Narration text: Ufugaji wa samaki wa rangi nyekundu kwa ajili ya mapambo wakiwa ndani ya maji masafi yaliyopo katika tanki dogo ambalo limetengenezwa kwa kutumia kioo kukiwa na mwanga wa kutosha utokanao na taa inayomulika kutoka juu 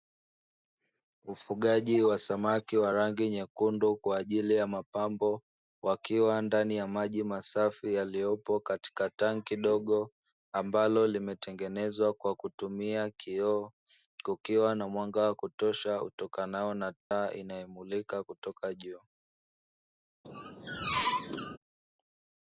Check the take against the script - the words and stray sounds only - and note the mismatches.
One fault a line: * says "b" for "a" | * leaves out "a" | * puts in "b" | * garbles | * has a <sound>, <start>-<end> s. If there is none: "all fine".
* has a dropout, 17.0-17.1 s
* has a squeak, 20.2-21.6 s